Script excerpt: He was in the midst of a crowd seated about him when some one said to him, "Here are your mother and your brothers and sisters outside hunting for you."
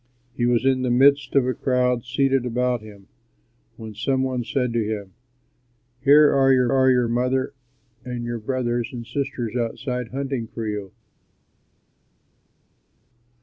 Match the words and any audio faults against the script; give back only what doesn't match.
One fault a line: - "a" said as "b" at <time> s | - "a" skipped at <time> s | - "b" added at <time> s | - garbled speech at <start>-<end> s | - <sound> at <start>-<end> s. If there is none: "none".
- "are your" added at 6.7 s